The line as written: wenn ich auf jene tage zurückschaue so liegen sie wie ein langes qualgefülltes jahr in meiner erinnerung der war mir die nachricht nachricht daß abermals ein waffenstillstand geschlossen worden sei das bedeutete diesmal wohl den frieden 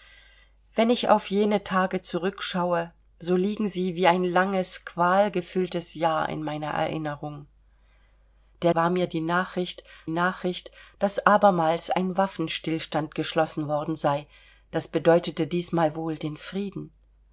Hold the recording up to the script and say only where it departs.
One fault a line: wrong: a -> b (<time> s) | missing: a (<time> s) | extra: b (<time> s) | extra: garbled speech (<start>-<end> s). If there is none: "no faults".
no faults